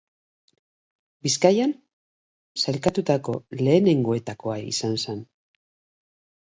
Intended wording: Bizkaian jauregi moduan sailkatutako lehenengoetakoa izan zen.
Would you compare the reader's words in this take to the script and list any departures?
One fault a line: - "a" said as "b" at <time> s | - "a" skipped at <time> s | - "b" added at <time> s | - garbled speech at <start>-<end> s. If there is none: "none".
- "jauregi moduan" skipped at 1.7 s